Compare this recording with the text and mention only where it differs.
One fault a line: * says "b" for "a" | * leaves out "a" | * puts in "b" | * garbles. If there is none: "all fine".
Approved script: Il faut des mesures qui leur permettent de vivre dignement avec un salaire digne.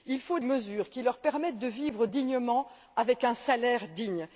* leaves out "des"